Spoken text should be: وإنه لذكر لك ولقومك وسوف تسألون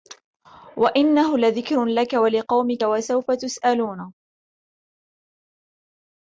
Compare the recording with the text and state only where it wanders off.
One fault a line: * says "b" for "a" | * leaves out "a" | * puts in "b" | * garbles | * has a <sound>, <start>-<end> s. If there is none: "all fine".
all fine